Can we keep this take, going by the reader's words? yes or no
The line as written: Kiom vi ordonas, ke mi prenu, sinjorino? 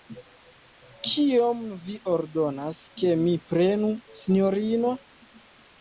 yes